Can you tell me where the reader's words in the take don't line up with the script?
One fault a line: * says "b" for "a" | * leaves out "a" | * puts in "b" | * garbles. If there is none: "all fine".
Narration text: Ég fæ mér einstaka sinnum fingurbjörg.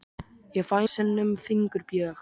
* leaves out "mér einstaka"